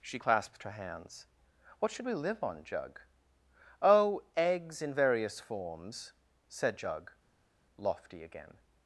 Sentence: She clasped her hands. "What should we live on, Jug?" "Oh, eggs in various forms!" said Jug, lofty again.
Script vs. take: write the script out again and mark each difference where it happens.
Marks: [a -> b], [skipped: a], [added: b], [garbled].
She clasped her hands. "What should we live on, Jug?" "Oh, eggs in various forms!" said Jug, lofty again.